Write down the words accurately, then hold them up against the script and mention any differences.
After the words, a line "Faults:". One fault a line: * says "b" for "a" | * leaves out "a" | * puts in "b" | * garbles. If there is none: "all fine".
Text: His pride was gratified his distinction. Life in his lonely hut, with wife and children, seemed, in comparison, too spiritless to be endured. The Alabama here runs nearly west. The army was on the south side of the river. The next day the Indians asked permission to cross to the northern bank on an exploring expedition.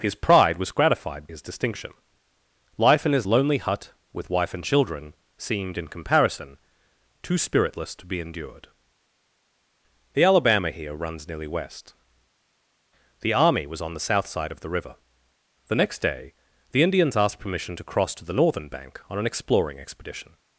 His pride was gratified his distinction. Life in his lonely hut, with wife and children, seemed, in comparison, too spiritless to be endured. The Alabama here runs nearly west. The army was on the south side of the river. The next day the Indians asked permission to cross to the northern bank on an exploring expedition.
Faults:
all fine